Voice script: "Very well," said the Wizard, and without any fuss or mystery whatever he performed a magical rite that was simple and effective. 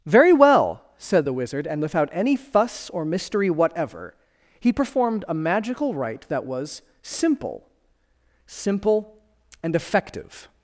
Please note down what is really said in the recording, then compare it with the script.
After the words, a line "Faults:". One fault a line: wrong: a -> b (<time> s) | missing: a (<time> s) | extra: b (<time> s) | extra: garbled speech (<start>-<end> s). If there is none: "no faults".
"Very well," said the Wizard, and without any fuss or mystery whatever he performed a magical rite that was simple simple and effective.
Faults:
extra: simple (8.5 s)